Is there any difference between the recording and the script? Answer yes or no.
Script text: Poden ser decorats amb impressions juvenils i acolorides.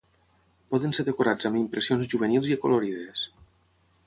no